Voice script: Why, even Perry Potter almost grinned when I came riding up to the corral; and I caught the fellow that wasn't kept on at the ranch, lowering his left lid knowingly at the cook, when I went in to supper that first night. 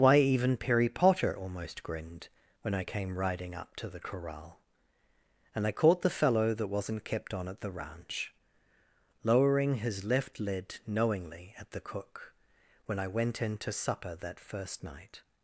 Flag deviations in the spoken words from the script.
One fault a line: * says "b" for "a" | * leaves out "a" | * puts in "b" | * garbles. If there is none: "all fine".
all fine